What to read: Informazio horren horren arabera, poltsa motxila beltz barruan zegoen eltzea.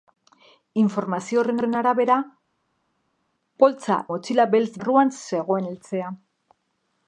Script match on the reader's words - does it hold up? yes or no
yes